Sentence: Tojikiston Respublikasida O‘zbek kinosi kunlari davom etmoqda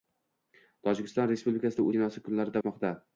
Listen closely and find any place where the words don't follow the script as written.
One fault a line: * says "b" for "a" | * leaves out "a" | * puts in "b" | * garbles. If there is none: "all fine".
* leaves out "O‘zbek"
* leaves out "davom"